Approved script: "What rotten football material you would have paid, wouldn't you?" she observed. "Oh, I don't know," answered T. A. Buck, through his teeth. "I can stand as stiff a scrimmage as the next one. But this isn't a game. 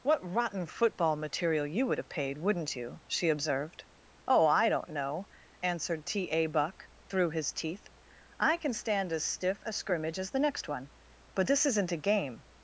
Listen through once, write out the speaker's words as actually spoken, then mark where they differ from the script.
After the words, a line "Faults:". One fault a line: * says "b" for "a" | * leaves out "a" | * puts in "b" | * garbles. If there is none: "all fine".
"What rotten football material you would have paid, wouldn't you?" she observed. "Oh, I don't know," answered T. A. Buck, through his teeth. "I can stand as stiff a scrimmage as the next one. But this isn't a game.
Faults:
all fine